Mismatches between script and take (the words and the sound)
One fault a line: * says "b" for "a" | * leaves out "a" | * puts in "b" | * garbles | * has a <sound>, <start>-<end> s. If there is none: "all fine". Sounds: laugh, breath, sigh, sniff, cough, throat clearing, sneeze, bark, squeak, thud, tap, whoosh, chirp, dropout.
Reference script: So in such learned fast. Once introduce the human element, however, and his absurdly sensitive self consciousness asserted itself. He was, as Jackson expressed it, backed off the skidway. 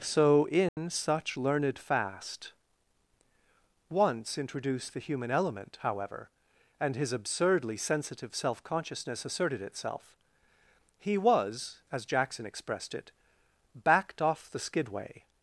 * has a dropout, 0.7-0.8 s